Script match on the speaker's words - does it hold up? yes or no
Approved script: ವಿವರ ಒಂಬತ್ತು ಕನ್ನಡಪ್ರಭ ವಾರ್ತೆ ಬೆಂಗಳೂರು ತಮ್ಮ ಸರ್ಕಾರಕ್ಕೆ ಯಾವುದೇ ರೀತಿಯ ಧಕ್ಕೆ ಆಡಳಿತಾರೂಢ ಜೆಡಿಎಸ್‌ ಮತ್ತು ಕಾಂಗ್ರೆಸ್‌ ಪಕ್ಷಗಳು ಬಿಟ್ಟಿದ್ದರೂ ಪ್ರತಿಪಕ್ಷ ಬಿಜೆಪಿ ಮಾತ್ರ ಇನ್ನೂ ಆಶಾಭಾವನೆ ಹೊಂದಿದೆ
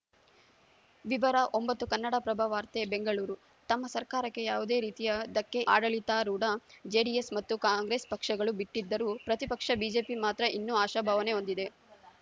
yes